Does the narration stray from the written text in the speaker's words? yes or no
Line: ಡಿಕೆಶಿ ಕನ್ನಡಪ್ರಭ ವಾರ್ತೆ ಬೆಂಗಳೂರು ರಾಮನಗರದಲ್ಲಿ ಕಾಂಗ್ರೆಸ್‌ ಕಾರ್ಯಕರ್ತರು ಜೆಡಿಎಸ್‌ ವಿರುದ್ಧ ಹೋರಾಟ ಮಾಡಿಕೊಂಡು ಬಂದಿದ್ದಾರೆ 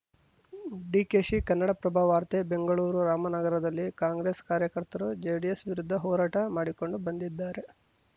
no